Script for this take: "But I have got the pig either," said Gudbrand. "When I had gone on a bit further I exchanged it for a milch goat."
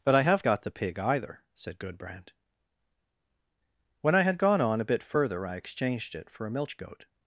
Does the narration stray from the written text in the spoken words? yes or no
no